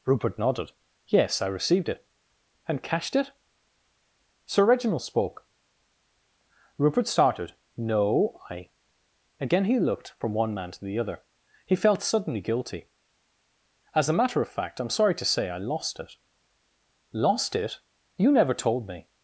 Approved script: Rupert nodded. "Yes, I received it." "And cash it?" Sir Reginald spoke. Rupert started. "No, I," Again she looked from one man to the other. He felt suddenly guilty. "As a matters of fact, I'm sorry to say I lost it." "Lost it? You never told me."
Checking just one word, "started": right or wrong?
right